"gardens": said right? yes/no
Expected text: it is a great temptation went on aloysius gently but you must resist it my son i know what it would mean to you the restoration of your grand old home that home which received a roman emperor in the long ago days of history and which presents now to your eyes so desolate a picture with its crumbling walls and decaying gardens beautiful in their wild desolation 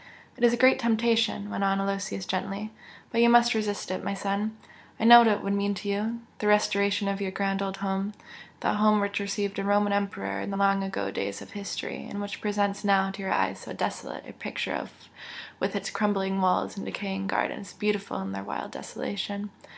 yes